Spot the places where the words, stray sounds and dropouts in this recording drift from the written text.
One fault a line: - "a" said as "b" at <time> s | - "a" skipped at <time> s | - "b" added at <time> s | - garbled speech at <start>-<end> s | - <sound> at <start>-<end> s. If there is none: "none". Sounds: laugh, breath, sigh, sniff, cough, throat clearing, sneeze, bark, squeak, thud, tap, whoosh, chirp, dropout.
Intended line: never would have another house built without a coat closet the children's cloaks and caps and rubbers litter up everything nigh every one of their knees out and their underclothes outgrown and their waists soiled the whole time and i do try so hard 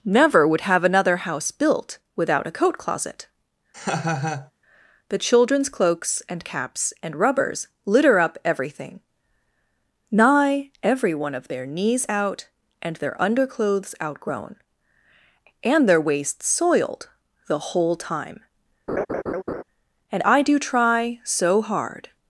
- laugh at 3.7-4.5 s
- laugh at 18.9-19.6 s